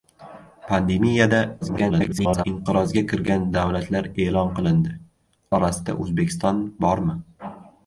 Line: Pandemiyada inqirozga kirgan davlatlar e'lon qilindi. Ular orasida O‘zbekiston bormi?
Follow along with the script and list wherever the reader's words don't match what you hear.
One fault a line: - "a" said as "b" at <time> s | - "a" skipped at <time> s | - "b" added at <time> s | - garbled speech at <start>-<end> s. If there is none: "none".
- garbled speech at 1.6-2.4 s
- "Ular" skipped at 4.9 s